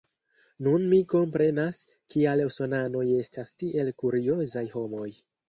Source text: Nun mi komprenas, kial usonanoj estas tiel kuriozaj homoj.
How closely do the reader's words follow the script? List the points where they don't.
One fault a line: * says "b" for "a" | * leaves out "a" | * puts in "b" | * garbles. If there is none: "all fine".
all fine